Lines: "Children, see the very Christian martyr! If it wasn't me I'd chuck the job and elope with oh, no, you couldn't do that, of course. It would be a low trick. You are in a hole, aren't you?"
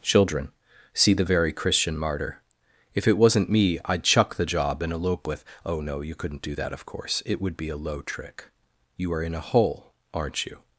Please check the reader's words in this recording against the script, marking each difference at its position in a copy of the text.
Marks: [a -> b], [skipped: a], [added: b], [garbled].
"Children, see the very Christian martyr! If it wasn't me I'd chuck the job and elope with oh, no, you couldn't do that, of course. It would be a low trick. You are in a hole, aren't you?"